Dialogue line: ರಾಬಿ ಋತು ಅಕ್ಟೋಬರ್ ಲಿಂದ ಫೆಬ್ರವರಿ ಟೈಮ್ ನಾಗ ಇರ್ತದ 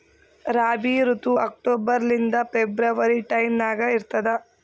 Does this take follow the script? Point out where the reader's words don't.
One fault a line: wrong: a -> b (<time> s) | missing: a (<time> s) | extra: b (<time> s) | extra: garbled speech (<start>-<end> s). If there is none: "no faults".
no faults